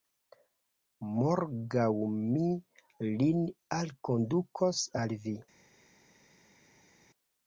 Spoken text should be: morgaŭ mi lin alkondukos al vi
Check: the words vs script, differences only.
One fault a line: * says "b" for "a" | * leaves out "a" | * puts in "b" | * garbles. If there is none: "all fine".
all fine